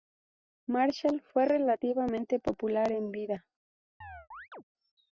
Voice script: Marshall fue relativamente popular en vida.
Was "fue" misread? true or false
false